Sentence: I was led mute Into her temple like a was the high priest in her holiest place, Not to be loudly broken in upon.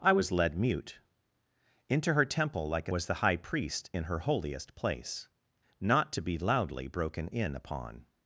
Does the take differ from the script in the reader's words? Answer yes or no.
no